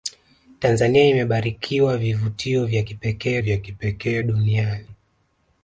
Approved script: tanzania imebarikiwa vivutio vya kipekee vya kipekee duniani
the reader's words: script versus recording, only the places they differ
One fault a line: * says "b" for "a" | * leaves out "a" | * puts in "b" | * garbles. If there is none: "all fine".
all fine